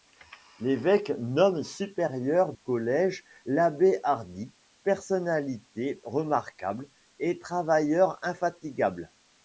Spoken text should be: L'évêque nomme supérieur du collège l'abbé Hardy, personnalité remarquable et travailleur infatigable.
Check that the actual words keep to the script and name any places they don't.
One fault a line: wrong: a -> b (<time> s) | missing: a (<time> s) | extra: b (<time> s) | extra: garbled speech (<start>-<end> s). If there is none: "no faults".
missing: du (2.5 s)